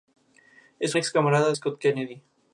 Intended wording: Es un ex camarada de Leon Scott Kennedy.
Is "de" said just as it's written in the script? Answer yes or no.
no